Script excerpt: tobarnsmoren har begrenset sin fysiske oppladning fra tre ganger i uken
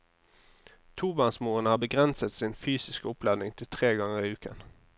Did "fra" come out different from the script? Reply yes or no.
yes